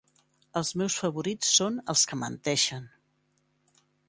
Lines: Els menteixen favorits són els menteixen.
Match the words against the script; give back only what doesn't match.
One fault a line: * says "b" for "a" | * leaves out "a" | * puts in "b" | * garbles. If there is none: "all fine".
* says "meus" for "menteixen"
* puts in "que"